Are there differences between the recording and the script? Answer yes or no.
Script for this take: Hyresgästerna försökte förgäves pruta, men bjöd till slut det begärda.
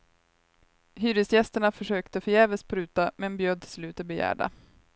no